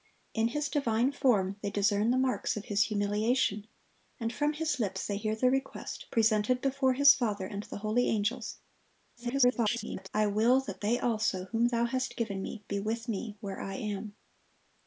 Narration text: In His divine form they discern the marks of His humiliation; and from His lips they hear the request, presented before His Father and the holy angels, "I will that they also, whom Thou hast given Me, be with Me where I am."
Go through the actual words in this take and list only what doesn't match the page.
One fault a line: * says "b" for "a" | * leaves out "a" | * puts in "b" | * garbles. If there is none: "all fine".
* garbles